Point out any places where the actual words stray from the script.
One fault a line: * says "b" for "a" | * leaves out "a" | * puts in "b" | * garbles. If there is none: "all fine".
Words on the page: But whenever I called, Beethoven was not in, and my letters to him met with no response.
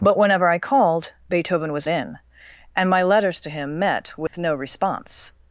* leaves out "not"